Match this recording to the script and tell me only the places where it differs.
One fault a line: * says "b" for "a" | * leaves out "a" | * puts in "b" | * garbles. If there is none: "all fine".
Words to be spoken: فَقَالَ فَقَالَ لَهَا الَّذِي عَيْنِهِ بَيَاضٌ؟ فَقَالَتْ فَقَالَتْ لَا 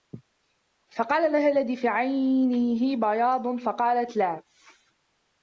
* leaves out "فَقَالَ"
* puts in "فِي"
* leaves out "فَقَالَتْ"